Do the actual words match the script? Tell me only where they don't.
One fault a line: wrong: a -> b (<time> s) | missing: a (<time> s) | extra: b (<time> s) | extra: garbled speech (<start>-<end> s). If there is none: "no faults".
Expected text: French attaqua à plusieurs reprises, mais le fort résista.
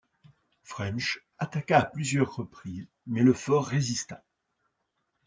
no faults